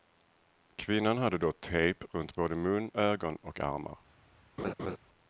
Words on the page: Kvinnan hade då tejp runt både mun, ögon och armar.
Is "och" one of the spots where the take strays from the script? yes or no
no